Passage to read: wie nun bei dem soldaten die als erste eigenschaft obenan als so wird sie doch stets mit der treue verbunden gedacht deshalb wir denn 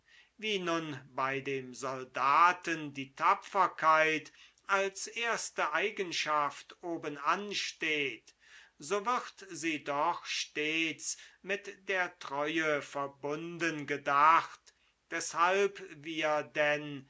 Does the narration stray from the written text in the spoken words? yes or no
yes